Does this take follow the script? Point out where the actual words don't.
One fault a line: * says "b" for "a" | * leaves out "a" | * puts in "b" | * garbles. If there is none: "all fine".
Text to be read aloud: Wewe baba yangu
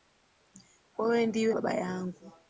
* puts in "ndiwe"